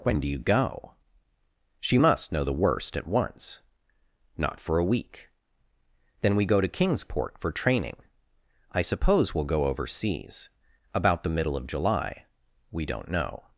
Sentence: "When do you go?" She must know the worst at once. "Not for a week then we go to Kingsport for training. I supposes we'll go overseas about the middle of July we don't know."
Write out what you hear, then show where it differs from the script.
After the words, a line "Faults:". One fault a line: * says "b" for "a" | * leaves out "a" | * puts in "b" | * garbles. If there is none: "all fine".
"When do you go?" She must know the worst at once. "Not for a week then we go to Kingsport for training. I suppose we'll go overseas about the middle of July we don't know."
Faults:
* says "suppose" for "supposes"